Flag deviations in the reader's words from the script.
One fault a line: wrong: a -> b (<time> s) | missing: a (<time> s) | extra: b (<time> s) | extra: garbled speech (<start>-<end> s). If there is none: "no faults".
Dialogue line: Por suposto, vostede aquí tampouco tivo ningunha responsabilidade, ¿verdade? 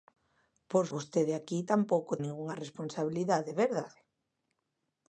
missing: suposto (0.8 s)
missing: tivo (2.1 s)